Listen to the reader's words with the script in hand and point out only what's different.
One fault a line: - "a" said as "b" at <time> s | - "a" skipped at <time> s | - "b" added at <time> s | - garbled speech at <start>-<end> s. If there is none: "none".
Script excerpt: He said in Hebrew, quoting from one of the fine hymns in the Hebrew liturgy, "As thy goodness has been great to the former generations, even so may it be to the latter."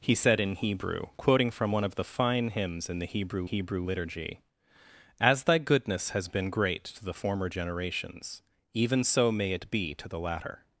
- "Hebrew" added at 3.4 s